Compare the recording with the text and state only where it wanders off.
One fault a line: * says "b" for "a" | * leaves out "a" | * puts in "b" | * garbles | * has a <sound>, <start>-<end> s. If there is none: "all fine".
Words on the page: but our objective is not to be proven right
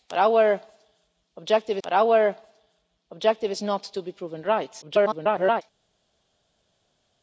* puts in "but our objective"
* garbles